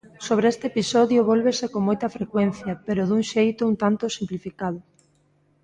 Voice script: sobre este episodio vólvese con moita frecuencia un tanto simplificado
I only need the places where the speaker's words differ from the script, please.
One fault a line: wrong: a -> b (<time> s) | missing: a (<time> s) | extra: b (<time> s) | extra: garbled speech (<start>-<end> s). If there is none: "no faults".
extra: pero dun xeito (2.9 s)